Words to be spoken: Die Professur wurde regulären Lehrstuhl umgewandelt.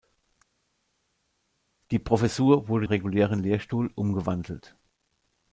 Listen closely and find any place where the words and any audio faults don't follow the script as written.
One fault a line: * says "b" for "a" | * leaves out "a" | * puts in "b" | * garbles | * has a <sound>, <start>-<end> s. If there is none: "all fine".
all fine